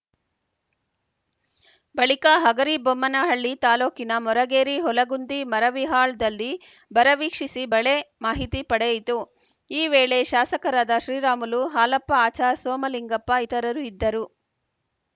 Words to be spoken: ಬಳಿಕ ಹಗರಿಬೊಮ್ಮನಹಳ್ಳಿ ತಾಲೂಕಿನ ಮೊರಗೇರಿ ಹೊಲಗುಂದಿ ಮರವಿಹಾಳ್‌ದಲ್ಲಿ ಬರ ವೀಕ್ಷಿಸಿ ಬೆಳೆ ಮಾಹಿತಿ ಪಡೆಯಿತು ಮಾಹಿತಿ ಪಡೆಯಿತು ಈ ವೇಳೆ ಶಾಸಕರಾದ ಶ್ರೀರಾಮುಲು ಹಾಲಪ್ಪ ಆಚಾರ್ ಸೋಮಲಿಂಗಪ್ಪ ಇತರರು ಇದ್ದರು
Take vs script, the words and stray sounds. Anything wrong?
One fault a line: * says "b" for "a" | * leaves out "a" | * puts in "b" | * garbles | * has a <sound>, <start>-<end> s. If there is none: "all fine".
* leaves out "ಮಾಹಿತಿ ಪಡೆಯಿತು"